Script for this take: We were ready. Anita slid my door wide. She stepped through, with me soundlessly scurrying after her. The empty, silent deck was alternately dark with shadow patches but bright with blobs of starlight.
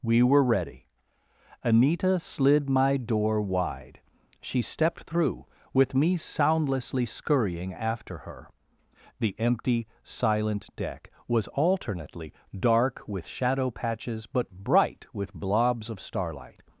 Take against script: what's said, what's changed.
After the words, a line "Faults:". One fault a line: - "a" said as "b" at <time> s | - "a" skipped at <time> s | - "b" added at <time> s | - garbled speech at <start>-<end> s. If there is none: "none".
We were ready. Anita slid my door wide. She stepped through, with me soundlessly scurrying after her. The empty, silent deck was alternately dark with shadow patches but bright with blobs of starlight.
Faults:
none